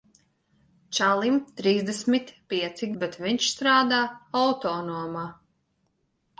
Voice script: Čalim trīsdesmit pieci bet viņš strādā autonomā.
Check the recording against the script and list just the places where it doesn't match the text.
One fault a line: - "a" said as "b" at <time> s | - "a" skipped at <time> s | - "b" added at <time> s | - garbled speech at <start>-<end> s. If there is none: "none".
none